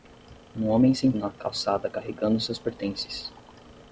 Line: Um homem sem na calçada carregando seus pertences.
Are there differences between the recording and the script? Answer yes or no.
no